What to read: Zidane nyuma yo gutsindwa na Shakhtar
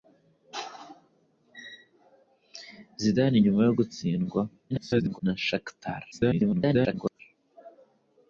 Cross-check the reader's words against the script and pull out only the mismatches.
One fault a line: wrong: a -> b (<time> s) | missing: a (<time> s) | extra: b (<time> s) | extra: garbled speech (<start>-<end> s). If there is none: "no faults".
extra: garbled speech (4.7-5.2 s)
extra: garbled speech (6.1-7.2 s)